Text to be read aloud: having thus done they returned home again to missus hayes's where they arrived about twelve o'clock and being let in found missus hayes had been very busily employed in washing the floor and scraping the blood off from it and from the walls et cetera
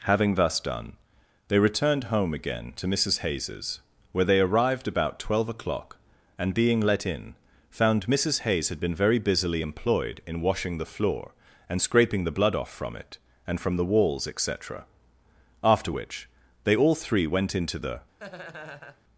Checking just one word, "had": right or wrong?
right